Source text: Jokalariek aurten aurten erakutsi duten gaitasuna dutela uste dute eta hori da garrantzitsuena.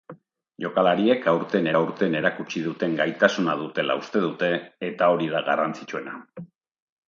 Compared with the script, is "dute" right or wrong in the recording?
right